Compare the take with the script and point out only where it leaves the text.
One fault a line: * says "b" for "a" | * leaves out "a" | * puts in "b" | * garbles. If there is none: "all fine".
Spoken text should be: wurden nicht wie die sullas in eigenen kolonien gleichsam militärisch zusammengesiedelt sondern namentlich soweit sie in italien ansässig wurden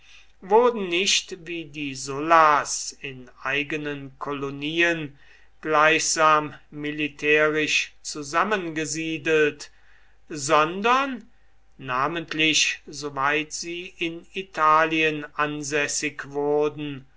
all fine